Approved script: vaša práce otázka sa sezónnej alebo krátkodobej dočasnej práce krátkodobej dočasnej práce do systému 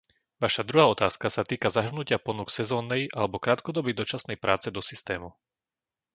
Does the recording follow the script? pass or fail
fail